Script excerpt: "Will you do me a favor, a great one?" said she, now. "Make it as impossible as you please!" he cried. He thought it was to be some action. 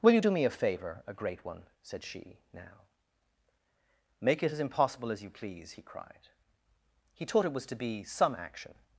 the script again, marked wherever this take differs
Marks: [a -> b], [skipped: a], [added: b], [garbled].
"Will you do me a favor, a great one?" said she, now. "Make it as impossible as you please!" he cried. He [thought -> taught] it was to be some action.